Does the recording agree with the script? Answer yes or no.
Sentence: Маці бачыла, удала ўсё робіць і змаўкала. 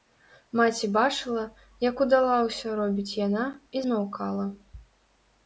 no